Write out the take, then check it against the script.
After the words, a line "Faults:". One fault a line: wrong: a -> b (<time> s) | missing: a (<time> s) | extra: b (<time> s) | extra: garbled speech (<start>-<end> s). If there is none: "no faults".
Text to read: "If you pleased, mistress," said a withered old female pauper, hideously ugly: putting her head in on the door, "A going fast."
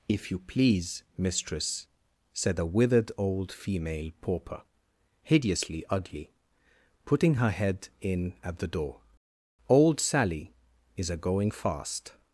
"If you please, mistress," said a withered old female pauper, hideously ugly: putting her head in at the door, "Old Sally is a going fast."
Faults:
wrong: pleased -> please (0.4 s)
wrong: on -> at (8.4 s)
extra: Old Sally is (9.7 s)